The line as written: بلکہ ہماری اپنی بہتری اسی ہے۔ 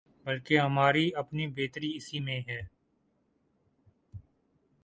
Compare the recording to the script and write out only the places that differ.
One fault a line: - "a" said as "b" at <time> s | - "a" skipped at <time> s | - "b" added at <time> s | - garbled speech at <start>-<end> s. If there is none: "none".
- "میں" added at 2.2 s